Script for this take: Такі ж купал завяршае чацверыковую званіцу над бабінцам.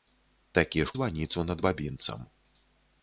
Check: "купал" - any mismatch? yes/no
yes